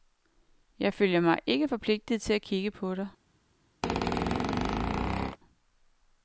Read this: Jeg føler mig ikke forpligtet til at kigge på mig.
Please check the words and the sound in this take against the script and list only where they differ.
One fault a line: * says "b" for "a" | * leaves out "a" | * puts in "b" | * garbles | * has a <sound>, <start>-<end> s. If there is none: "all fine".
* says "dig" for "mig"
* has a squeak, 3.8-5.4 s